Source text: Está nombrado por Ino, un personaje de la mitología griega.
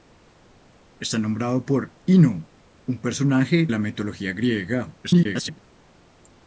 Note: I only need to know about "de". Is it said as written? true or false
false